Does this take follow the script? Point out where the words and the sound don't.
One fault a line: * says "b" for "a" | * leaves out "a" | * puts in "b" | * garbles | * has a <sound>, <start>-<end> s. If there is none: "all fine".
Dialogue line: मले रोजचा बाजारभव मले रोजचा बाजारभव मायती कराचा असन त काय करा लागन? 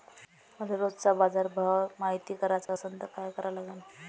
* leaves out "मले रोजचा बाजारभव"
* has a dropout, 2.7-2.7 s